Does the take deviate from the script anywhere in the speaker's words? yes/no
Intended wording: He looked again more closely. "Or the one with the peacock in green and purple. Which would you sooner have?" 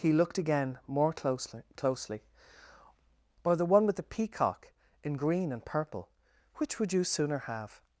yes